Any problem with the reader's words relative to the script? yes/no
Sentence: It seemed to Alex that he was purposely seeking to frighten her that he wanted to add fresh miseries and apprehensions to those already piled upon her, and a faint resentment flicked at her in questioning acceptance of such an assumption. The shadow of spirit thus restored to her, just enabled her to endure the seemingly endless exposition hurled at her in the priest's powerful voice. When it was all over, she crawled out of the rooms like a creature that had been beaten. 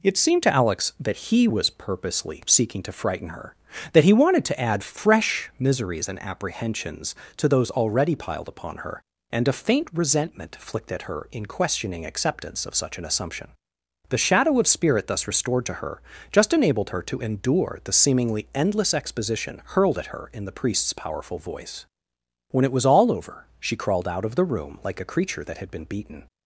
yes